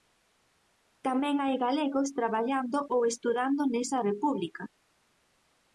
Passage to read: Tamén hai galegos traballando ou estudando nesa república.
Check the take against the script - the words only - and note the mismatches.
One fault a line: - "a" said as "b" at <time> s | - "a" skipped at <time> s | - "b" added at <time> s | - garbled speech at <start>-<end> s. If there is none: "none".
none